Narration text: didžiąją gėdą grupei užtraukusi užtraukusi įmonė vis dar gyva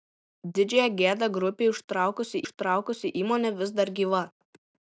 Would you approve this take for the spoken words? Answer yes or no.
yes